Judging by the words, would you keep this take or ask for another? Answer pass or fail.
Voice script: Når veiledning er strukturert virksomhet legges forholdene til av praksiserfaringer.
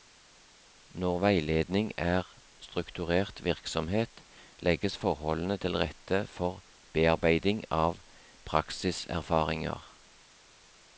fail